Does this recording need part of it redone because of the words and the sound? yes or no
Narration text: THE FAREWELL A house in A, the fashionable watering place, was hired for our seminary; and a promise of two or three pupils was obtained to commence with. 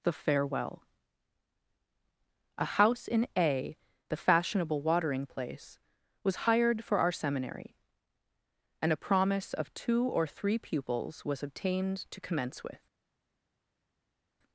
no